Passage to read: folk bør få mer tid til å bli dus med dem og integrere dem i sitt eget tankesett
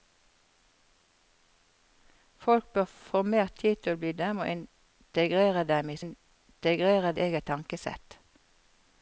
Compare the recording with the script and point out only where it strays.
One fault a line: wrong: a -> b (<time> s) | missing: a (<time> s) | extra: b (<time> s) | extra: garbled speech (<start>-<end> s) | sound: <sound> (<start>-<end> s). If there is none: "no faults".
missing: dus med (4.1 s)
wrong: sitt -> integrere (6.0 s)